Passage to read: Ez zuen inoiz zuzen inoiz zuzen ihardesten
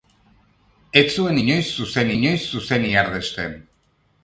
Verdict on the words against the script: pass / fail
pass